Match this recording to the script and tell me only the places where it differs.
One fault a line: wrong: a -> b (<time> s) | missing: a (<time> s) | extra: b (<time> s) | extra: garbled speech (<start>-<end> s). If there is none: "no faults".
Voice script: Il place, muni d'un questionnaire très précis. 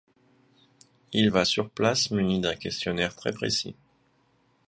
extra: va sur (1.3 s)